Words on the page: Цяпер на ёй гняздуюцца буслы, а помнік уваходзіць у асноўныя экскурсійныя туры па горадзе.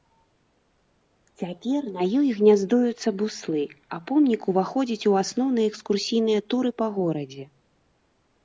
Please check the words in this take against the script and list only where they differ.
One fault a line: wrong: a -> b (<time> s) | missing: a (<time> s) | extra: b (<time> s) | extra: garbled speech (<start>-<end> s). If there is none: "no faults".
no faults